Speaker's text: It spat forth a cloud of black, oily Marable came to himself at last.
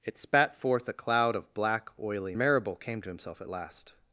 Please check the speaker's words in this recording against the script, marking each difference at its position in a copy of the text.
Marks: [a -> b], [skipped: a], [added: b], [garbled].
It spat forth a cloud of black, oily Marable came to himself at last.